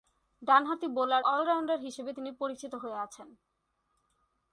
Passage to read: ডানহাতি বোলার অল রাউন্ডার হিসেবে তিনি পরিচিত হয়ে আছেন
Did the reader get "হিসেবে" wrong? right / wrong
right